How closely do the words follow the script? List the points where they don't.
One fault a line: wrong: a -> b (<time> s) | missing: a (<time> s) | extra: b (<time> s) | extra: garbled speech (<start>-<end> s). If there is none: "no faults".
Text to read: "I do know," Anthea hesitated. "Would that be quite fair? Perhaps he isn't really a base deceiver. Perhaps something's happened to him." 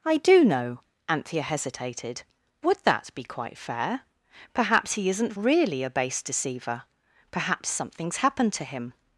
no faults